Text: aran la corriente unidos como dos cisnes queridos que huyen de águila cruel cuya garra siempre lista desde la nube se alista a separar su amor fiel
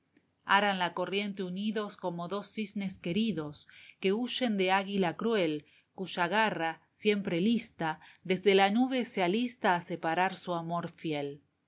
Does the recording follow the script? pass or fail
pass